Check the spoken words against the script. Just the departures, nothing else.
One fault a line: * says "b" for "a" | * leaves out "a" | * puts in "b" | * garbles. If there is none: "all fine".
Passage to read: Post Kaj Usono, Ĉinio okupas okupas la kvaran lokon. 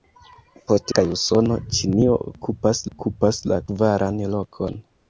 all fine